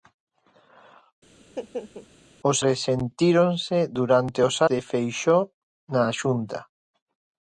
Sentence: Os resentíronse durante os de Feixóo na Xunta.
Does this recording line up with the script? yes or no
yes